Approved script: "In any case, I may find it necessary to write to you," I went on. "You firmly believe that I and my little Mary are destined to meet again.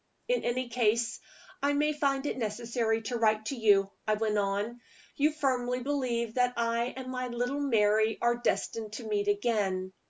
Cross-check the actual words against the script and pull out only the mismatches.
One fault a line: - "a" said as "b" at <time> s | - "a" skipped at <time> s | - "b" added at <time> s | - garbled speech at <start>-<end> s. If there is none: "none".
none